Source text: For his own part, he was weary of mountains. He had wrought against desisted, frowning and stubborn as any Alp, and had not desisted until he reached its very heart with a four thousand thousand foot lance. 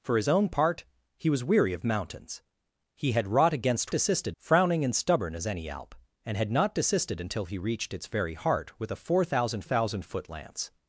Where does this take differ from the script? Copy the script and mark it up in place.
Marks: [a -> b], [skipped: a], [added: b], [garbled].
For his own part, he was weary of mountains. He had wrought against desisted, frowning and stubborn as any Alp, and had not desisted until he reached its very heart with a four thousand thousand foot lance.